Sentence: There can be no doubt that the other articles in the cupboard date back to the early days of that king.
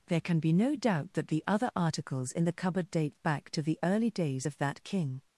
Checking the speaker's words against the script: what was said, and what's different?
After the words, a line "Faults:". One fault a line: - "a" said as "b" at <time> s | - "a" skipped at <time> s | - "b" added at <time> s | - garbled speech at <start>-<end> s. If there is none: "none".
There can be no doubt that the other articles in the cupboard date back to the early days of that king.
Faults:
none